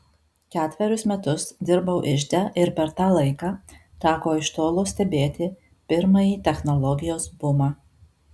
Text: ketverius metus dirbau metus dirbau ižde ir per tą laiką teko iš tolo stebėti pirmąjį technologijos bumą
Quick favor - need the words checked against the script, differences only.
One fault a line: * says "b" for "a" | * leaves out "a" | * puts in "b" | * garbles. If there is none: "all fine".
* leaves out "metus dirbau"